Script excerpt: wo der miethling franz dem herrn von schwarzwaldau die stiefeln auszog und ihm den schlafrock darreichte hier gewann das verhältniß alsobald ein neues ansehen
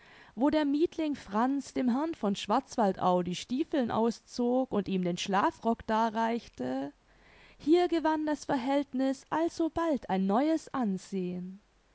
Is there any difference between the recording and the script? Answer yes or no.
no